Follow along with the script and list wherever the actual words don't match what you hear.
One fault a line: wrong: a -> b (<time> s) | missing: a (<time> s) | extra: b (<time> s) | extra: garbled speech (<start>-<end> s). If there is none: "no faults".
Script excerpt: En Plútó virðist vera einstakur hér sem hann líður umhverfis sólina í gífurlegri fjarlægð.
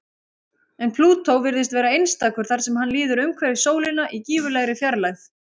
wrong: hér -> þar (2.5 s)